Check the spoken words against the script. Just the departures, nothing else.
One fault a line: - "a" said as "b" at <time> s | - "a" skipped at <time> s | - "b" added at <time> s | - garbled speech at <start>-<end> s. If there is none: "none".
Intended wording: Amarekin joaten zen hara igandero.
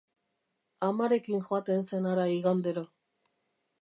none